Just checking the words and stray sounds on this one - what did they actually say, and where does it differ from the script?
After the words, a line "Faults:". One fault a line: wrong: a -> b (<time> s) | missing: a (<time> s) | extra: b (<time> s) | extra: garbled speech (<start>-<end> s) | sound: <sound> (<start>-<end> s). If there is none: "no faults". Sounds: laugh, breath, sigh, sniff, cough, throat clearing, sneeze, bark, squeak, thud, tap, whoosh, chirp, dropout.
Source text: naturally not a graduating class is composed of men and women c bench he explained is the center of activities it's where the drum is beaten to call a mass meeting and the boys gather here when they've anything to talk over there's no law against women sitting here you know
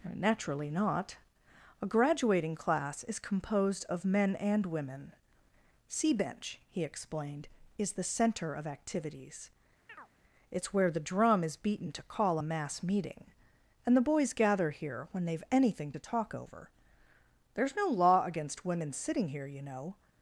naturally not a graduating class is composed of men and women c bench he explained is the center of activities it's where the drum is beaten to call a mass meeting and the boys gather here when they've anything to talk over there's no law against women sitting here you know
Faults:
sound: chirp (9.9-10.1 s)